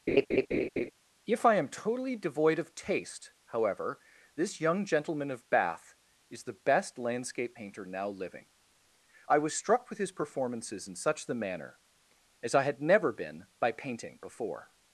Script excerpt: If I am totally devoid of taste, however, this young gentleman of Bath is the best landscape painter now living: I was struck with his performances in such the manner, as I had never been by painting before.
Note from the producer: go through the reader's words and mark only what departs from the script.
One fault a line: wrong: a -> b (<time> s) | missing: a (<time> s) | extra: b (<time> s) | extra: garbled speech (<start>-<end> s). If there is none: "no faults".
no faults